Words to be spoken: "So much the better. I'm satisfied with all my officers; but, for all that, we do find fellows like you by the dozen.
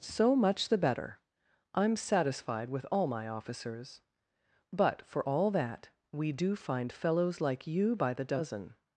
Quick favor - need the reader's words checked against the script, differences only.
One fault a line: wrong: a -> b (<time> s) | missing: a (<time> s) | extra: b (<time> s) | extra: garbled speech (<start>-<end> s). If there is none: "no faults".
no faults